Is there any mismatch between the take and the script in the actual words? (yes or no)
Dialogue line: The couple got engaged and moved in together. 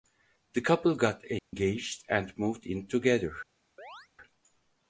no